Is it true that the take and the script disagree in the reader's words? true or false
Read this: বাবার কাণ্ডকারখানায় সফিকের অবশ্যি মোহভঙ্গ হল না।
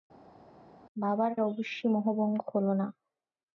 true